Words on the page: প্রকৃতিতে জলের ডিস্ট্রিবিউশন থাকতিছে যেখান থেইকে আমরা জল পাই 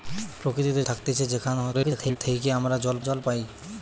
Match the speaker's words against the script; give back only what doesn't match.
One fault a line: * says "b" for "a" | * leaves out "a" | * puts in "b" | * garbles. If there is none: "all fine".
* leaves out "জলের ডিস্ট্রিবিউশন"
* garbles
* puts in "জল"